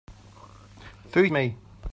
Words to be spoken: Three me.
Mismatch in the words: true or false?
false